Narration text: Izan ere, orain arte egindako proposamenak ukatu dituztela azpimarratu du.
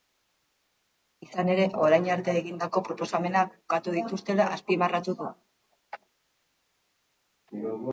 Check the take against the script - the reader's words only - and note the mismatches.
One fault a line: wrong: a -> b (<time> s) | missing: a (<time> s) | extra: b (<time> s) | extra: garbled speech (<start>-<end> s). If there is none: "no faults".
no faults